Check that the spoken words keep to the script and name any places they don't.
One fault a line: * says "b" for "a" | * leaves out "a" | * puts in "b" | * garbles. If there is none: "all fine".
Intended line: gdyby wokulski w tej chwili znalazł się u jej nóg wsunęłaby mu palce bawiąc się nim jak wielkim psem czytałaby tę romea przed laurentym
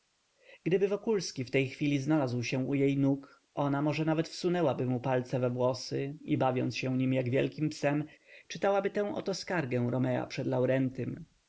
* puts in "ona może nawet"
* puts in "we włosy i"
* puts in "oto skargę"